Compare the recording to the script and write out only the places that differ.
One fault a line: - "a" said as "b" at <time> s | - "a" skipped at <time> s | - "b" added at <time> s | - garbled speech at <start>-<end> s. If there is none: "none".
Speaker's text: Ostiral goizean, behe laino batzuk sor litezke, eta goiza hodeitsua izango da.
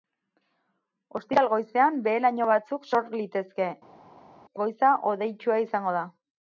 - "eta" skipped at 3.7 s